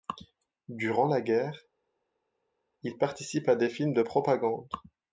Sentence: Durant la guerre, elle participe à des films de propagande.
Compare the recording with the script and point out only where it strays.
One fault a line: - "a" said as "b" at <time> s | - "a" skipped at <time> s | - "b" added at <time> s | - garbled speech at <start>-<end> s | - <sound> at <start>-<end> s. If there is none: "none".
- "elle" said as "il" at 2.8 s